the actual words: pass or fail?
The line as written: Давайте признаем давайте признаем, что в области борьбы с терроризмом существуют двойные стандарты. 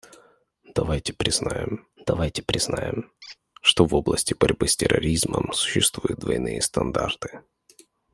pass